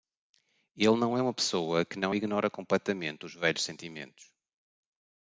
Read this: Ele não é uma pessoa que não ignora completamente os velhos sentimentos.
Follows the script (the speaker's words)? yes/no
yes